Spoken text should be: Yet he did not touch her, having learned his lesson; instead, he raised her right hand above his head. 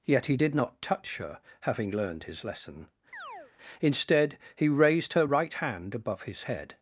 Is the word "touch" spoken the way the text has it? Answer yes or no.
yes